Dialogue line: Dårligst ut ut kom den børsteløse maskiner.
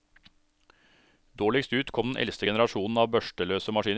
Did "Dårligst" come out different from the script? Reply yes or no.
no